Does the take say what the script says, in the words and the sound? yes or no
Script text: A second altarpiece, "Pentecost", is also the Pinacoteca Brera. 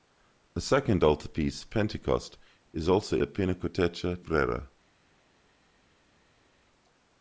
yes